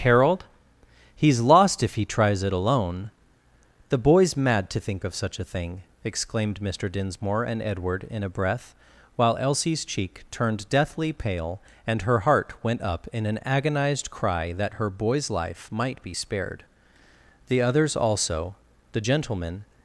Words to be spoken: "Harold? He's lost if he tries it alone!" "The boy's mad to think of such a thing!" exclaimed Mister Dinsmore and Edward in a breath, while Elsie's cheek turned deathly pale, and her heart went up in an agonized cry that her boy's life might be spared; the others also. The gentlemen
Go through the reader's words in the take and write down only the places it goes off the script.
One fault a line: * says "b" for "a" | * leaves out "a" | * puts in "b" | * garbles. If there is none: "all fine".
all fine